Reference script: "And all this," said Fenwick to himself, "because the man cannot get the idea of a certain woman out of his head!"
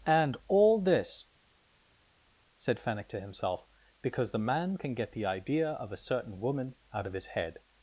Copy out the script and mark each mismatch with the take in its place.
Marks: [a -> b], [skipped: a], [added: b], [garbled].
"And all this," said Fenwick to himself, "because the man [cannot -> can] get the idea of a certain woman out of his head!"